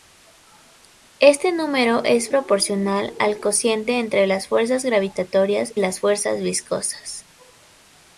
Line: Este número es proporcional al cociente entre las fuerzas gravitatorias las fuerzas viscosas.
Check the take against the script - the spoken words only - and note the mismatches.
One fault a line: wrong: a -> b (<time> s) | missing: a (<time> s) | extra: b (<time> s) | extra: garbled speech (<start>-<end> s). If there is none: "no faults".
no faults